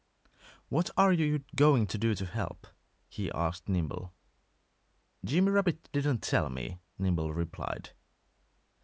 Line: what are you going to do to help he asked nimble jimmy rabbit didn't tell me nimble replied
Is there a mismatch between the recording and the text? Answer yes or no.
no